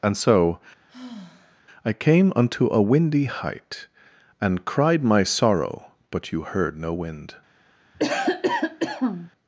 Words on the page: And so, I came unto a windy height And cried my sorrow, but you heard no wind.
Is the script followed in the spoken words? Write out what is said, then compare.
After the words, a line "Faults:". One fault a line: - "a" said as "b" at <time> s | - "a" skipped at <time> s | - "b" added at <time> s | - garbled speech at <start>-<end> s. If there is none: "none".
And so, I came unto a windy height And cried my sorrow, but you heard no wind.
Faults:
none